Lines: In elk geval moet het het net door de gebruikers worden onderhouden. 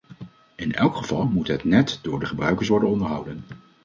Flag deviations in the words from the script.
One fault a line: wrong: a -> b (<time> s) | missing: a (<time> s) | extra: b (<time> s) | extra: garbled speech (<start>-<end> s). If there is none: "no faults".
missing: het (1.6 s)